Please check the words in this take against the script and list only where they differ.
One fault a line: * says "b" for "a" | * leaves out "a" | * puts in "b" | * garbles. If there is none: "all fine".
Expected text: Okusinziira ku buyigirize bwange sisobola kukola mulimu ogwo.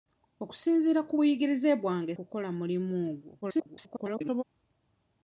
* leaves out "sisobola"
* garbles